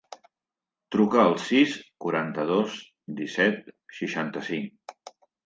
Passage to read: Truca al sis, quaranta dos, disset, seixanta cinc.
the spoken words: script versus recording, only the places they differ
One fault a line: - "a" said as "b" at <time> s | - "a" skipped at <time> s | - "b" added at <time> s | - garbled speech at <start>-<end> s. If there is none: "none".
none